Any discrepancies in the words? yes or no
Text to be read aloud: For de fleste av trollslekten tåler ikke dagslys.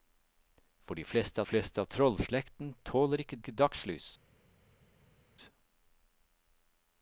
yes